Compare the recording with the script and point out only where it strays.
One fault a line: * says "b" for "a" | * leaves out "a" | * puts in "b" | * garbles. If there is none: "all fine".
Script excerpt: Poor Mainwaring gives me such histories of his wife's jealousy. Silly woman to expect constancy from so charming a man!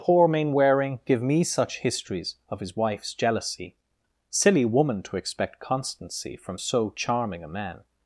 * says "give" for "gives"